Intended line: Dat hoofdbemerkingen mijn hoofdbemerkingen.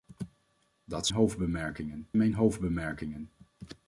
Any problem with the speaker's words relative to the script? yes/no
no